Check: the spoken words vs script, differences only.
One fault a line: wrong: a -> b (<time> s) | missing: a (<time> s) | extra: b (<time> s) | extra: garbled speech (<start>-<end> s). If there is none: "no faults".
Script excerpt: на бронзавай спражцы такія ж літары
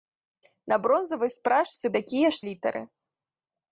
no faults